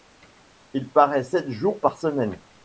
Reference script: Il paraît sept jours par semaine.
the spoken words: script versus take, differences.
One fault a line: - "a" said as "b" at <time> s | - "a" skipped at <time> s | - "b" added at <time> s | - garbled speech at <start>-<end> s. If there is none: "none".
none